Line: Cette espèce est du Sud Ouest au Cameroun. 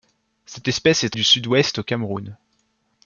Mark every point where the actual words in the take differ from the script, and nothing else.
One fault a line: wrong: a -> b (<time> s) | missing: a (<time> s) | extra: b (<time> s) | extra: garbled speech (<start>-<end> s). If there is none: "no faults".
no faults